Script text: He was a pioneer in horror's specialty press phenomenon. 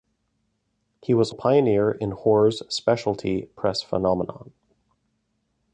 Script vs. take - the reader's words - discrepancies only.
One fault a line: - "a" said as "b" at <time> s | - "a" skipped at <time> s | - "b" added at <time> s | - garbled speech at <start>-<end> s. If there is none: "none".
none